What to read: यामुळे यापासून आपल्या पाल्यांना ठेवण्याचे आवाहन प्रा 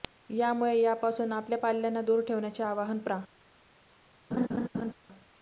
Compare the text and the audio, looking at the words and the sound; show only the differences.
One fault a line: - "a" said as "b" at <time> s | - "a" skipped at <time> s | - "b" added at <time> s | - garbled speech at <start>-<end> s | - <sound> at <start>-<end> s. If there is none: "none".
- "दूर" added at 2.0 s
- laugh at 4.3-4.9 s